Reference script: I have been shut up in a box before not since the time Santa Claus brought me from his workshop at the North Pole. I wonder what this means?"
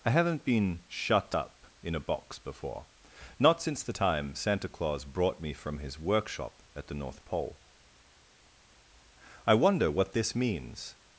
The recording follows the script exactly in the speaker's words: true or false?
false